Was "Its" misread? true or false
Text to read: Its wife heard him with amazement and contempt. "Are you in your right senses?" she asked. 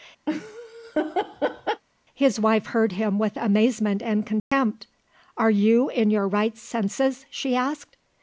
true